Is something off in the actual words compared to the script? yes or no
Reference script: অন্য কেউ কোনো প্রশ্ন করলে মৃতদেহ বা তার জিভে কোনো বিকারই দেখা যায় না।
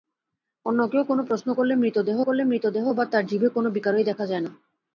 yes